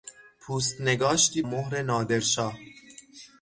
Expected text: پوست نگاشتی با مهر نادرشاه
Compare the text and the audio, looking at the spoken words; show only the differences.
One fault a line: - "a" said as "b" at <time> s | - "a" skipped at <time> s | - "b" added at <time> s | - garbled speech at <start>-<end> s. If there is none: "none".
- "با" skipped at 1.4 s